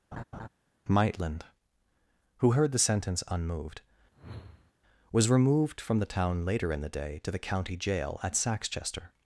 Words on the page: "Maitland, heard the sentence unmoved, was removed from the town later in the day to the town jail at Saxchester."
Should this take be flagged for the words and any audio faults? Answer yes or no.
yes